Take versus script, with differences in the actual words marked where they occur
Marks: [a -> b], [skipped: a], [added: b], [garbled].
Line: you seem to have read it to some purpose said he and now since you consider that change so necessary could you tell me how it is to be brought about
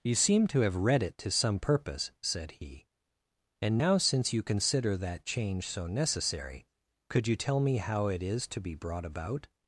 you seem to have read it to some purpose said he and now since you consider that change so necessary could you tell me how it is to be brought about